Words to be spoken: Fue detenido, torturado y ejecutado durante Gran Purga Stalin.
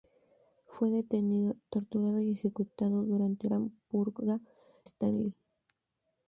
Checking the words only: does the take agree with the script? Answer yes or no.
yes